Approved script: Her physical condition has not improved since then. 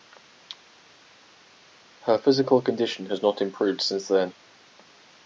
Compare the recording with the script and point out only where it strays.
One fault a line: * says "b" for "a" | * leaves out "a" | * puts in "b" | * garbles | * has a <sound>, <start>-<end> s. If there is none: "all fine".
all fine